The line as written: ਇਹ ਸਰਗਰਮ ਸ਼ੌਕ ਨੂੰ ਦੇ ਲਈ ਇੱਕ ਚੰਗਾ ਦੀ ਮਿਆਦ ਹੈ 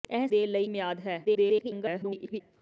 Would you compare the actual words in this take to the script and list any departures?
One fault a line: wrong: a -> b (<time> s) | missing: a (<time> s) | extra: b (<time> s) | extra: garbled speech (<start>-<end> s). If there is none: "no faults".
missing: ਸਰਗਰਮ ਸ਼ੌਕ ਨੂੰ (0.3 s)
missing: ਇੱਕ ਚੰਗਾ ਦੀ (0.6 s)
extra: garbled speech (1.2-2.4 s)